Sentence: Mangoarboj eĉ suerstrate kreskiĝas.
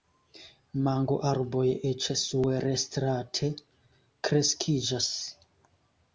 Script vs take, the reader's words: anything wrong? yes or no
no